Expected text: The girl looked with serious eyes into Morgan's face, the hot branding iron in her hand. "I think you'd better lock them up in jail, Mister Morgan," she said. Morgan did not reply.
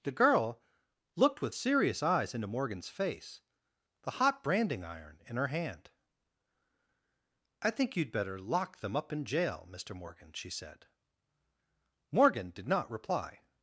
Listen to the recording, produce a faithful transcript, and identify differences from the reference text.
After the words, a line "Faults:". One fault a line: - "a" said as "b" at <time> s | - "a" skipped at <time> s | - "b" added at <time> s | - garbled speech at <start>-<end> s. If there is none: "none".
The girl looked with serious eyes into Morgan's face, the hot branding iron in her hand. "I think you'd better lock them up in jail, Mister Morgan," she said. Morgan did not reply.
Faults:
none